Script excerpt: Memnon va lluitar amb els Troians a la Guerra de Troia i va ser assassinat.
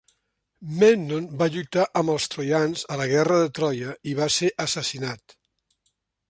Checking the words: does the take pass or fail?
pass